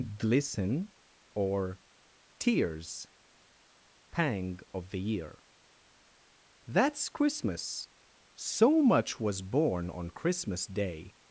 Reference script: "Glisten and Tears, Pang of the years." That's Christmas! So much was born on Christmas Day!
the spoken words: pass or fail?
fail